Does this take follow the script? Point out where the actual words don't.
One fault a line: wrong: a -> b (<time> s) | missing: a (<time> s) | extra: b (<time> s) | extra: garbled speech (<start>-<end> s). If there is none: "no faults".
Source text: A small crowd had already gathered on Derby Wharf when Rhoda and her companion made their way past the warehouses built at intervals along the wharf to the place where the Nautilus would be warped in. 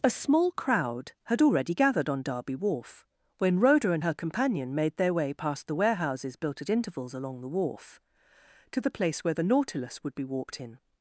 no faults